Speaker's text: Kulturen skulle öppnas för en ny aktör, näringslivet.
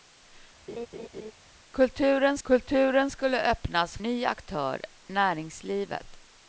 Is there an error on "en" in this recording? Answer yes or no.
yes